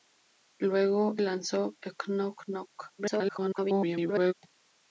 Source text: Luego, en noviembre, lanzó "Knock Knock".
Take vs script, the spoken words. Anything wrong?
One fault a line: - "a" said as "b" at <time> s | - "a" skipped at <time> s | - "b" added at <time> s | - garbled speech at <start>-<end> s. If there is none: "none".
- "en noviembre" skipped at 1.1 s
- garbled speech at 3.0-4.3 s